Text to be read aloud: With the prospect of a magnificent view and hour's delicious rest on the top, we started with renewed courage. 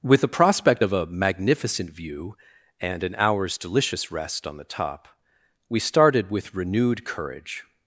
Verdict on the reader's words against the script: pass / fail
fail